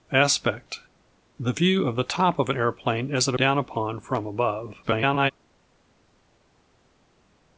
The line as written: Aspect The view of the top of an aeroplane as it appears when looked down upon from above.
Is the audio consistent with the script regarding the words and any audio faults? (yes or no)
no